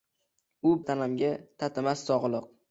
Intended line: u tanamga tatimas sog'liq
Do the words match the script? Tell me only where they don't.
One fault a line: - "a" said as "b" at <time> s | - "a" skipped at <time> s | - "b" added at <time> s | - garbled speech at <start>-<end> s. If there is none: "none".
none